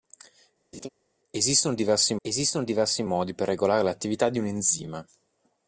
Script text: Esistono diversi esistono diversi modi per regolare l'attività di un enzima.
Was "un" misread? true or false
false